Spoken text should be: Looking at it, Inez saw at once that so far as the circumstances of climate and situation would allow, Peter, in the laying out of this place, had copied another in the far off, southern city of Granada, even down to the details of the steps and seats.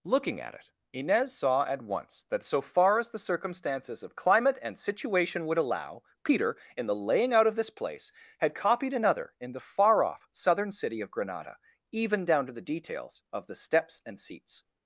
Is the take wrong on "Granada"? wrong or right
right